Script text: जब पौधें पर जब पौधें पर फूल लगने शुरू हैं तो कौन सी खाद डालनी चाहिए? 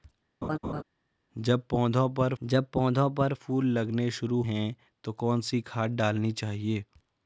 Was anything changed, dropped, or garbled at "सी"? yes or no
no